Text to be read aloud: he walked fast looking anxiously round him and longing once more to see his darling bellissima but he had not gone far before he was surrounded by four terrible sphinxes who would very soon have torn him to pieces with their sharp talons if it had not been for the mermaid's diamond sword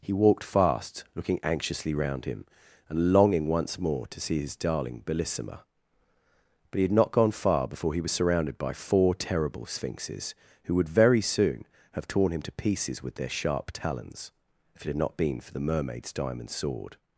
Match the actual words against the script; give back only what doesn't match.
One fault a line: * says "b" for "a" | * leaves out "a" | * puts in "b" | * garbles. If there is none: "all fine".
all fine